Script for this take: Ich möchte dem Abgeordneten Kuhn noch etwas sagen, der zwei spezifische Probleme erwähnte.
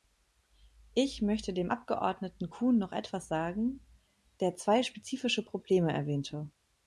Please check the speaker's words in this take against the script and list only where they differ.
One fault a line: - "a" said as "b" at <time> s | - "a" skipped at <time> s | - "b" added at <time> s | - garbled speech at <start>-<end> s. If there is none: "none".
none